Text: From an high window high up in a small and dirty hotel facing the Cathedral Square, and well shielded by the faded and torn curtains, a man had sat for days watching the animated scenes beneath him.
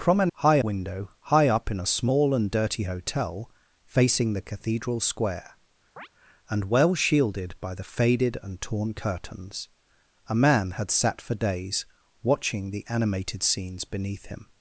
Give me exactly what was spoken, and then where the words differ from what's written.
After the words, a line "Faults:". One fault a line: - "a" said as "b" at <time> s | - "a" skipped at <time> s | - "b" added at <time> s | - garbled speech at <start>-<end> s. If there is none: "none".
From an high window high up in a small and dirty hotel facing the Cathedral Square, and well shielded by the faded and torn curtains, a man had sat for days watching the animated scenes beneath him.
Faults:
none